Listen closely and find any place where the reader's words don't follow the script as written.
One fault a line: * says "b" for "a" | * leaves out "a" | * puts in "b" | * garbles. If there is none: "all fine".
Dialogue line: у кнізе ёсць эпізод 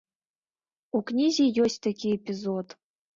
* puts in "такі"